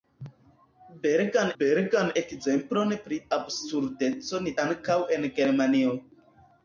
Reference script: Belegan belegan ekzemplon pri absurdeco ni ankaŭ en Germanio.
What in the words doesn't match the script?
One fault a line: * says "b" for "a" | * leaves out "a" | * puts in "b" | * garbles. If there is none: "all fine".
all fine